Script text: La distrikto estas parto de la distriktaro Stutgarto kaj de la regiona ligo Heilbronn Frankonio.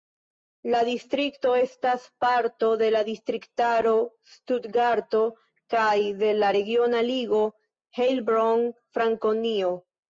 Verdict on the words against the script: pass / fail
pass